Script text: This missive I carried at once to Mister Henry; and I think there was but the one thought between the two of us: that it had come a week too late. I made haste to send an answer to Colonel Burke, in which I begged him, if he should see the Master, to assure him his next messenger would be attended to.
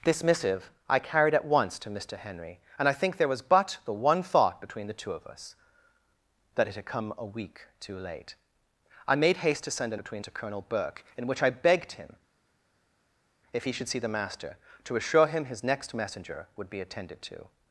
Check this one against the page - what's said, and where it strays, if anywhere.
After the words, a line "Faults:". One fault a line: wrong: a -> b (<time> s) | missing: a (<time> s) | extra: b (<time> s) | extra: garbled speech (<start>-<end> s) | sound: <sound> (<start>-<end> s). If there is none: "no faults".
This missive I carried at once to Mister Henry; and I think there was but the one thought between the two of us: that it had come a week too late. I made haste to send an between to Colonel Burke, in which I begged him, if he should see the Master, to assure him his next messenger would be attended to.
Faults:
wrong: answer -> between (10.0 s)